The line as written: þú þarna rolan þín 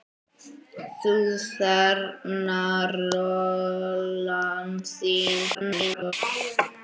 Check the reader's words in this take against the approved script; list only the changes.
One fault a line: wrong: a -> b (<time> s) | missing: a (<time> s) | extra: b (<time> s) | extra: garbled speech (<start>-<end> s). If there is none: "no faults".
extra: garbled speech (5.5-6.1 s)